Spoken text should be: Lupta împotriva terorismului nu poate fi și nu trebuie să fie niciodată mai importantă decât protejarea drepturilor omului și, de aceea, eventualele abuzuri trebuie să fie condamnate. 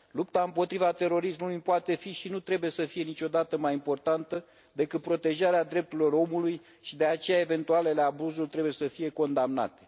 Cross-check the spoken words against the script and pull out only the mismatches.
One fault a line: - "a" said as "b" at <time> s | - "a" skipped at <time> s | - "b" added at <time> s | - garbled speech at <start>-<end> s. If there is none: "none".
none